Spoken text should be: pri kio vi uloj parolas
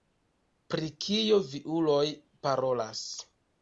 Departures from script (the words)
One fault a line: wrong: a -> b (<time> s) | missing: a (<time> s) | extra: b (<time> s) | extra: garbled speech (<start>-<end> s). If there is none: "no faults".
no faults